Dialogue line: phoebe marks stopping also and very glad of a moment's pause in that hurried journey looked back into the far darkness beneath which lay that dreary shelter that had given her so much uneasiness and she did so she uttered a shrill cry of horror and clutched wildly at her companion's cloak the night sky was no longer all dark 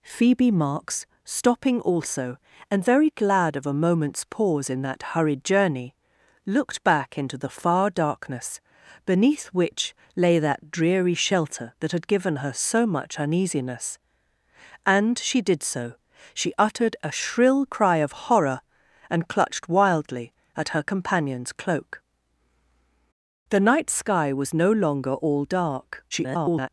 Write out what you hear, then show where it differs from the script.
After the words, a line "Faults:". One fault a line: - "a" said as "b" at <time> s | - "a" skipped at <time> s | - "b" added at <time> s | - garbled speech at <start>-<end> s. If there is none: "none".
phoebe marks stopping also and very glad of a moment's pause in that hurried journey looked back into the far darkness beneath which lay that dreary shelter that had given her so much uneasiness and she did so she uttered a shrill cry of horror and clutched wildly at her companion's cloak the night sky was no longer all dark [garbled]
Faults:
- garbled speech at 26.1-26.7 s